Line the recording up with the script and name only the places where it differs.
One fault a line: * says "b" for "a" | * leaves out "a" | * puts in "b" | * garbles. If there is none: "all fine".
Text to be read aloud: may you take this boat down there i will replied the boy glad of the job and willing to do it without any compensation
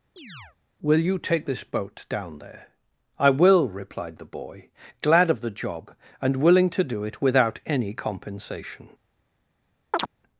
* says "will" for "may"